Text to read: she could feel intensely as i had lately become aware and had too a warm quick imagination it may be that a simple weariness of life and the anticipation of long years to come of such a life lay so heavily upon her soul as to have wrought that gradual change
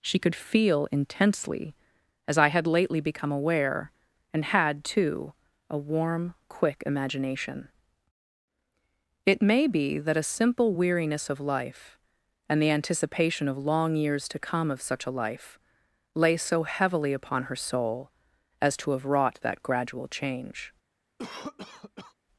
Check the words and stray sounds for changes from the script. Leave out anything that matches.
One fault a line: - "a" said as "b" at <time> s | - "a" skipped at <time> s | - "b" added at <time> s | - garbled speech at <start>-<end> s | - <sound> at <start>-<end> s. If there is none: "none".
- cough at 21.2-22.1 s